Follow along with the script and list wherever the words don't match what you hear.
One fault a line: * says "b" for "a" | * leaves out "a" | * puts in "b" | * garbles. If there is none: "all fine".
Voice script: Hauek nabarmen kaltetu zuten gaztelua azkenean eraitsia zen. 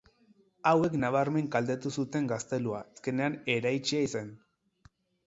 all fine